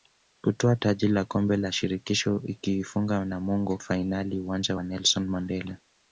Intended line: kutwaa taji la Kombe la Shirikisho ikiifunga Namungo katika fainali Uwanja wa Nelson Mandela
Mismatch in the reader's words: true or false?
true